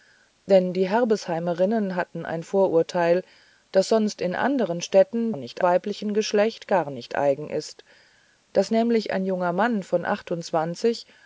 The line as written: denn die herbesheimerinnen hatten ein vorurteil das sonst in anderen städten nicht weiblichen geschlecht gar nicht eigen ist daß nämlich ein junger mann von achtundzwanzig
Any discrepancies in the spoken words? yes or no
no